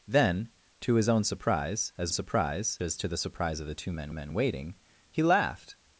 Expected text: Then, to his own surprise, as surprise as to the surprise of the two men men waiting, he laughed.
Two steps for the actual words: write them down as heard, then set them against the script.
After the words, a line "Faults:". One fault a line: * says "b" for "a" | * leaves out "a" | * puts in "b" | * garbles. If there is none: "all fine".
Then, to his own surprise, as surprise as to the surprise of the two men men waiting, he laughed.
Faults:
all fine